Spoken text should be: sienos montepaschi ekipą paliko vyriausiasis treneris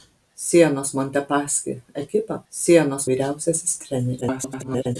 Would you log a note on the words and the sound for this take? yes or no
yes